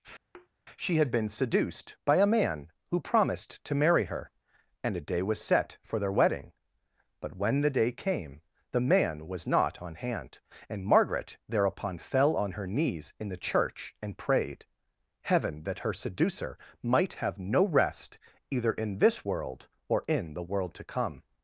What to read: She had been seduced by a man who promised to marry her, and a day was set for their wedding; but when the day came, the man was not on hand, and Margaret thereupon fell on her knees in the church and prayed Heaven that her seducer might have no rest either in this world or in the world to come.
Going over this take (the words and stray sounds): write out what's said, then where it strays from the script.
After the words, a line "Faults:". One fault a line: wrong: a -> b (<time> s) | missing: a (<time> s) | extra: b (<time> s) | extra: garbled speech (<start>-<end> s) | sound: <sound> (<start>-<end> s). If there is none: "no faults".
She had been seduced by a man who promised to marry her, and a day was set for their wedding; but when the day came, the man was not on hand, and Margaret thereupon fell on her knees in the church and prayed Heaven that her seducer might have no rest either in this world or in the world to come.
Faults:
sound: thud (0.3-0.5 s)